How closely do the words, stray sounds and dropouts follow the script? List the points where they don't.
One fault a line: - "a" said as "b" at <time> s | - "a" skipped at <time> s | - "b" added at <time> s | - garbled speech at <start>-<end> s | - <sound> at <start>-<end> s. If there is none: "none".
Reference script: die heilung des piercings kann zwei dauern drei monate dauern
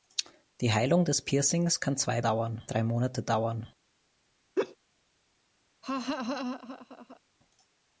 - laugh at 4.6-4.8 s
- laugh at 5.8-7.2 s